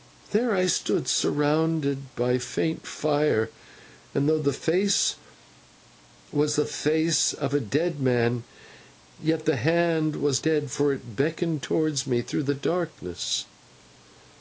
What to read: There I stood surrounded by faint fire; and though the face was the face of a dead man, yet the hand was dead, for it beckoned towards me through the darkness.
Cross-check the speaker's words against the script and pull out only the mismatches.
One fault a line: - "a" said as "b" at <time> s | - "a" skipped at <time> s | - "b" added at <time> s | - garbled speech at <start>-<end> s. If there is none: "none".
none